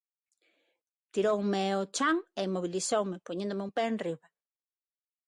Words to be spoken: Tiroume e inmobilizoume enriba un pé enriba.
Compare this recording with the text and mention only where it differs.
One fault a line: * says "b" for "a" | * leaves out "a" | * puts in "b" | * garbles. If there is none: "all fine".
* puts in "ao chan"
* says "poñéndome" for "enriba"